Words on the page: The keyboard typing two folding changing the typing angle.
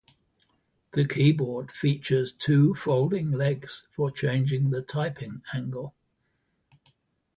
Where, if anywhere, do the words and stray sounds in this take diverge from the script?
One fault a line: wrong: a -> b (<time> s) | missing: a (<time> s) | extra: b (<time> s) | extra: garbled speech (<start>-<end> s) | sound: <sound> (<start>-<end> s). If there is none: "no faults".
wrong: typing -> features (1.7 s)
extra: legs for (3.3 s)